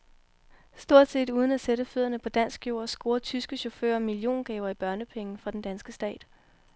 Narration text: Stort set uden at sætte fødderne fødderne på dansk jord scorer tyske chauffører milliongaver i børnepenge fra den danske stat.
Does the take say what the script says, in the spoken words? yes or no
no